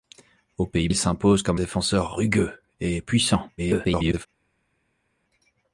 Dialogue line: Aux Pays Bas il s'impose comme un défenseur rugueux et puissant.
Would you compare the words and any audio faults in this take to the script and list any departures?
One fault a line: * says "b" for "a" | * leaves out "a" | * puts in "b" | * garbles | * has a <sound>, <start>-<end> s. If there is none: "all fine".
* leaves out "Bas"
* leaves out "un"
* garbles